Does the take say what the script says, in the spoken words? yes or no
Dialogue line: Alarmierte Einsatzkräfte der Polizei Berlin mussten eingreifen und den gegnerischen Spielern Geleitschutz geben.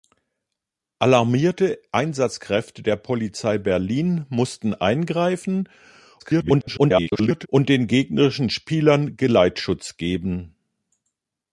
no